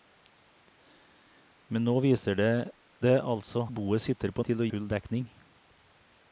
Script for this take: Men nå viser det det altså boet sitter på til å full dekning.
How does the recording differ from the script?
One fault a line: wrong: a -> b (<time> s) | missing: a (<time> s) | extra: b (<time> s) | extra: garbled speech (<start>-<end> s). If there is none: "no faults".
no faults